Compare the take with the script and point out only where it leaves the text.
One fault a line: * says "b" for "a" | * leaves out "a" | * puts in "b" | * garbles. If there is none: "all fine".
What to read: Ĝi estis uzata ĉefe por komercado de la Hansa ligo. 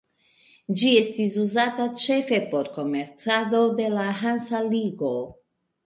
all fine